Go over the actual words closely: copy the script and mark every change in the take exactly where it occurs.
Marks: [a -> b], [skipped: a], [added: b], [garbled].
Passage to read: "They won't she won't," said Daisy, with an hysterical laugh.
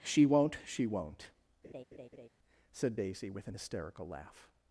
["They -> She] won't she won't," said Daisy, with an hysterical laugh.